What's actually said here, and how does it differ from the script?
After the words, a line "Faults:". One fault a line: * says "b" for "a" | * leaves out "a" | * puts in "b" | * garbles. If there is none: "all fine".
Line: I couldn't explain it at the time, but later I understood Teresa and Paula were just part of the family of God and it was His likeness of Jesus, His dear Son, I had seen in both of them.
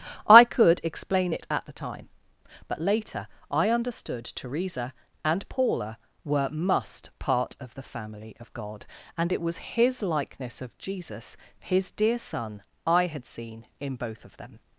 I could explain it at the time, but later I understood Teresa and Paula were must part of the family of God and it was His likeness of Jesus, His dear Son, I had seen in both of them.
Faults:
* says "could" for "couldn't"
* says "must" for "just"